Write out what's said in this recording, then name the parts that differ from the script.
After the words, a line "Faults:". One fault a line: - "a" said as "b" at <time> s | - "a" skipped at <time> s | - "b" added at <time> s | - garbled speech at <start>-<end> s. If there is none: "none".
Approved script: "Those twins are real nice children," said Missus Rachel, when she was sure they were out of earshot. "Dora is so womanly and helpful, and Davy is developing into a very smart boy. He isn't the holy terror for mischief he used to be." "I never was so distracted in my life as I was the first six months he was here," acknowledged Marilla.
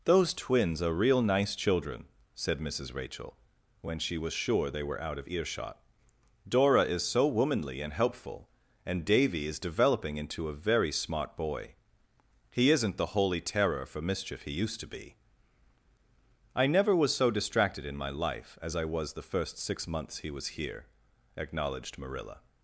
"Those twins are real nice children," said Missus Rachel, when she was sure they were out of earshot. "Dora is so womanly and helpful, and Davy is developing into a very smart boy. He isn't the holy terror for mischief he used to be." "I never was so distracted in my life as I was the first six months he was here," acknowledged Marilla.
Faults:
none